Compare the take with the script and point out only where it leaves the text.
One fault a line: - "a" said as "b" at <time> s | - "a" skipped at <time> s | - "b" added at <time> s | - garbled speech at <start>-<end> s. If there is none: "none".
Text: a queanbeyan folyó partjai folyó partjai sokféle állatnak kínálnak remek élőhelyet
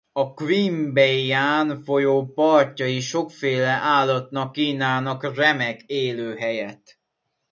- "folyó partjai" skipped at 3.0 s